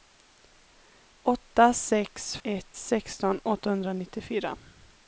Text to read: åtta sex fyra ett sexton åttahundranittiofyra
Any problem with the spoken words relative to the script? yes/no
yes